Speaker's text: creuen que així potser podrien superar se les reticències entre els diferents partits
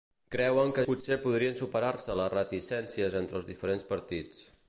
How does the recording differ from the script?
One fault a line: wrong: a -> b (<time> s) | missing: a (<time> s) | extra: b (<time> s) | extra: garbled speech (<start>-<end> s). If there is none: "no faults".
missing: així (0.8 s)